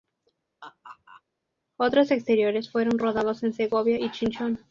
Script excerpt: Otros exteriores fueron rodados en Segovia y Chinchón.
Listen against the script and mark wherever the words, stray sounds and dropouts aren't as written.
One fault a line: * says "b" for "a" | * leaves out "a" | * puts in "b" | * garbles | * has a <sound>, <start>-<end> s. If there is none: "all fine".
* has a laugh, 0.6-1.2 s